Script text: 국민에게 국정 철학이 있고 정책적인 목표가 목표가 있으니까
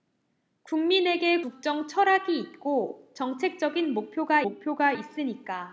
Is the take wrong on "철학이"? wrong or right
right